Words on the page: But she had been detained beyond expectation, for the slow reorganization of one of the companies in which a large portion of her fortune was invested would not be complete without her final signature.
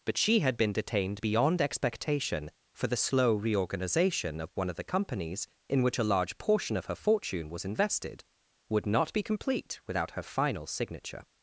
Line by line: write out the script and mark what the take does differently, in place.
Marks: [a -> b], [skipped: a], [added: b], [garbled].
But she had been detained beyond expectation, for the slow reorganization of one of the companies in which a large portion of her fortune was invested would not be complete without her final signature.